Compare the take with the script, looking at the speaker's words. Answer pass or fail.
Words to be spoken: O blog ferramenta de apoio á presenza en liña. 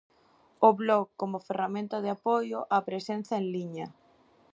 fail